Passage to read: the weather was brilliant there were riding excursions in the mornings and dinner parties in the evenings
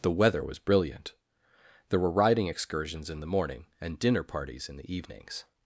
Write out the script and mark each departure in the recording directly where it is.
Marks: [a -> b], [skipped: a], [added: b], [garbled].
the weather was brilliant there were riding excursions in the [mornings -> morning] and dinner parties in the evenings